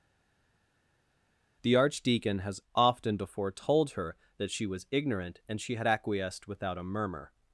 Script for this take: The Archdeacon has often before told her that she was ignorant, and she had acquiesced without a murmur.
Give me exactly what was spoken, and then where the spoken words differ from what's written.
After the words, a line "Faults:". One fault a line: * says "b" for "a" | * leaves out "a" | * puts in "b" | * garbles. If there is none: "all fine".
The Archdeacon has often before told her that she was ignorant, and she had acquiesced without a murmur.
Faults:
all fine